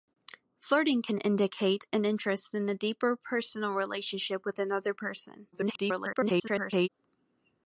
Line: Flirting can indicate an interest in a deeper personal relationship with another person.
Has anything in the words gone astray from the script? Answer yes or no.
yes